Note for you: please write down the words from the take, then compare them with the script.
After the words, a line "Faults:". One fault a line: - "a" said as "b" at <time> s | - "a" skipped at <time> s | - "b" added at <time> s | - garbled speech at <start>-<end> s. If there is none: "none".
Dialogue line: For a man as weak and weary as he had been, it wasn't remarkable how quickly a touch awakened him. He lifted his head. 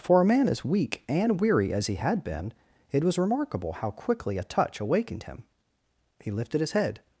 For a man as weak and weary as he had been, it was remarkable how quickly a touch awakened him. He lifted his head.
Faults:
- "wasn't" said as "was" at 3.0 s